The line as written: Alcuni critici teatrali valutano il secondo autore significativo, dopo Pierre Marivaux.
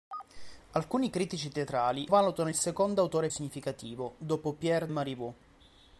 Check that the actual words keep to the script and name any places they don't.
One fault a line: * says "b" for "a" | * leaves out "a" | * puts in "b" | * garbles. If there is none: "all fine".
all fine